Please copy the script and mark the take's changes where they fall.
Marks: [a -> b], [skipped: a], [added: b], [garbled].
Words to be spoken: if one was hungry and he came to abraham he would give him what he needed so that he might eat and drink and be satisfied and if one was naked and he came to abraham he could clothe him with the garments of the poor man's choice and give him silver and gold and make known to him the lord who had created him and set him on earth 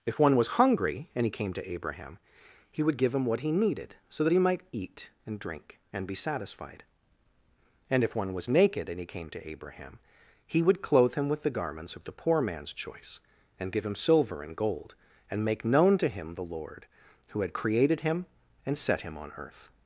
if one was hungry and he came to abraham he would give him what he needed so that he might eat and drink and be satisfied and if one was naked and he came to abraham he [could -> would] clothe him with the garments of the poor man's choice and give him silver and gold and make known to him the lord who had created him and set him on earth